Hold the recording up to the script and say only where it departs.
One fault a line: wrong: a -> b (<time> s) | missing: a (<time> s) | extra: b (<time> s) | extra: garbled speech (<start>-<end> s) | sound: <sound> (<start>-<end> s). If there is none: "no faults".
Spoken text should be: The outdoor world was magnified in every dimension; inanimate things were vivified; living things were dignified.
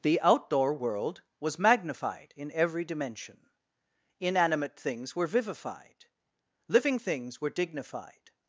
no faults